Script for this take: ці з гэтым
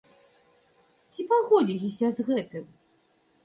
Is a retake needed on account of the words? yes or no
yes